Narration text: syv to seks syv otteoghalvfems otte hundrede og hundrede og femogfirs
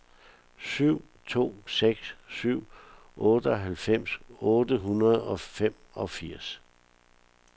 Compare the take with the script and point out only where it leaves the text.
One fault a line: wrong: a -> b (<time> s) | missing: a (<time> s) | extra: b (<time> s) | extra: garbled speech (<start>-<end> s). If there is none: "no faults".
missing: hundrede og (5.4 s)